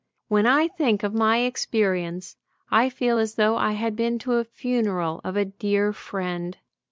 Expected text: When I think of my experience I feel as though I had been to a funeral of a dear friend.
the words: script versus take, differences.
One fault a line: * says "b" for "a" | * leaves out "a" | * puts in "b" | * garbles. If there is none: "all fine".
all fine